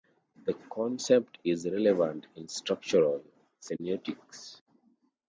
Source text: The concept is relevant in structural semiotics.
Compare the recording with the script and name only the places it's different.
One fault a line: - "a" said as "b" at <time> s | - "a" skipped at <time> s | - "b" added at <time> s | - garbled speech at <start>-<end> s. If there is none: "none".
none